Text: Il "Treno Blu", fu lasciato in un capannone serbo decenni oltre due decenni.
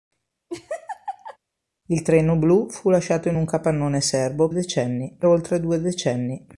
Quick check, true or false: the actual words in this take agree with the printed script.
true